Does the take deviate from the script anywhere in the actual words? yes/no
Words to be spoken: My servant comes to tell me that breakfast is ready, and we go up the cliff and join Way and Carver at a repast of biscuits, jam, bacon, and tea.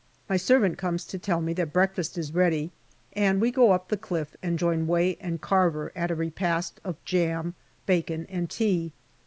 yes